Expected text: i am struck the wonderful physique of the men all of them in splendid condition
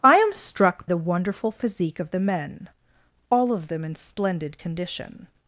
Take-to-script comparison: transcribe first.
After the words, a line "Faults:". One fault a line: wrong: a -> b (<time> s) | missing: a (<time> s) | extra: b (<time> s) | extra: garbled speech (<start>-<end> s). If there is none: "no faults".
i am struck the wonderful physique of the men all of them in splendid condition
Faults:
no faults